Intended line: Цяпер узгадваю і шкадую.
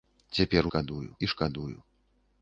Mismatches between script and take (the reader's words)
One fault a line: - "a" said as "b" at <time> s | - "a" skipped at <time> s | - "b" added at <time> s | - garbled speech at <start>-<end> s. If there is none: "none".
- "узгадваю" said as "шкадую" at 0.7 s